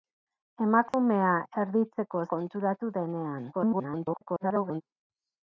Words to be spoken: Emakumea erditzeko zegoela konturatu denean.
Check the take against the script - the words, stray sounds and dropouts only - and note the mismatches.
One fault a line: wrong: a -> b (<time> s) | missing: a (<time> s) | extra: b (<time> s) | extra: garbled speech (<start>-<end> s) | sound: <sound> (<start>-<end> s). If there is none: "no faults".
sound: dropout (0.9-0.9 s)
missing: zegoela (2.2 s)
extra: garbled speech (3.5-4.8 s)